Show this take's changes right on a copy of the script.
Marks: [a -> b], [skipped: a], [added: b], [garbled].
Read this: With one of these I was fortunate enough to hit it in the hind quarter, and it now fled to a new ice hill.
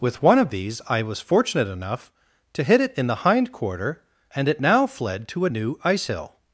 With one of these I was fortunate enough to hit it in the hind quarter, and it now fled to a new ice hill.